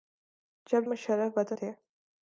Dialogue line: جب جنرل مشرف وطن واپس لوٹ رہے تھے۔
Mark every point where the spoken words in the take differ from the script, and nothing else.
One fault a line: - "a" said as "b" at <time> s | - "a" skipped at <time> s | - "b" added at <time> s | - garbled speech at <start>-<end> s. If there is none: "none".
- "جنرل" skipped at 0.8 s
- "واپس لوٹ رہے" skipped at 1.6 s